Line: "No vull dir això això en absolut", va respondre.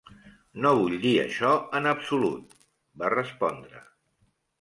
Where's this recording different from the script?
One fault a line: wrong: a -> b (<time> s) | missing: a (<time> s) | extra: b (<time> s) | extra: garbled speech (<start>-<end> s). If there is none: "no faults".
missing: això (1.5 s)